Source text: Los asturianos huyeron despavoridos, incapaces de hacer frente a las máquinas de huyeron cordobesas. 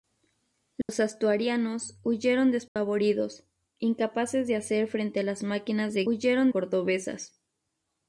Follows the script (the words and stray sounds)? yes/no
no